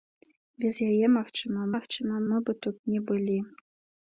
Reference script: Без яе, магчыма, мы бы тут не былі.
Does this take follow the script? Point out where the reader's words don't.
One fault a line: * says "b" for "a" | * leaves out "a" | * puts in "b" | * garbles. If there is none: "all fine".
* puts in "магчыма"